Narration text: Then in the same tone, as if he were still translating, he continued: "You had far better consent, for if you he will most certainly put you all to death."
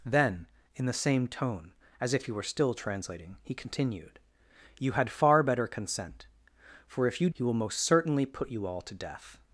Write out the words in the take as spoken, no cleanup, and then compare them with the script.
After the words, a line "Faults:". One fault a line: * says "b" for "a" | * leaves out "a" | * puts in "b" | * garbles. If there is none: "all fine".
Then in the same tone, as if he were still translating, he continued: "You had far better consent, for if you he will most certainly put you all to death."
Faults:
all fine